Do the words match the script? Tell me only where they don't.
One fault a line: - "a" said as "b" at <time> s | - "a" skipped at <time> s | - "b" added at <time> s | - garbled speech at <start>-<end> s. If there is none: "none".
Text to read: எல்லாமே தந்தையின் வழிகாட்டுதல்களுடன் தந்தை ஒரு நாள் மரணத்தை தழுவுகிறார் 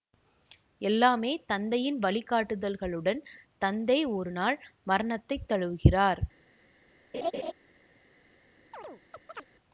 none